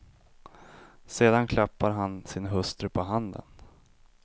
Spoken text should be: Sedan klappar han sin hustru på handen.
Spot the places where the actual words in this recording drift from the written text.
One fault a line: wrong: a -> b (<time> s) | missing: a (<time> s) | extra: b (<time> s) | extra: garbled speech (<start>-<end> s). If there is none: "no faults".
no faults